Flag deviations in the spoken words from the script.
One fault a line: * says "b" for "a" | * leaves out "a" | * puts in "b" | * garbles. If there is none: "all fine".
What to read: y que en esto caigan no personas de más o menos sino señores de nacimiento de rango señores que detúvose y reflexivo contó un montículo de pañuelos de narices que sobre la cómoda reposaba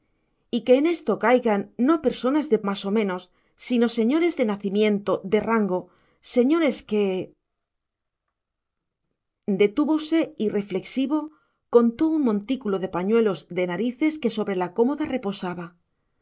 all fine